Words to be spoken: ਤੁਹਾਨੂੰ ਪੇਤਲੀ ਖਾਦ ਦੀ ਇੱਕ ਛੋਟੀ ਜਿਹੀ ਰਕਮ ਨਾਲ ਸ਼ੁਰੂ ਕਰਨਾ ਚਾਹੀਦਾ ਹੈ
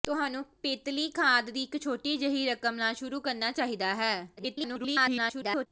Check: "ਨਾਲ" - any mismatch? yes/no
no